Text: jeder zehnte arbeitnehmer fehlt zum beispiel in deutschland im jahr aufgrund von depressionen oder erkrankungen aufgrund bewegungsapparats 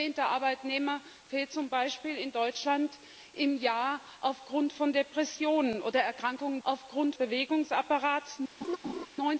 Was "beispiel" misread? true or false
false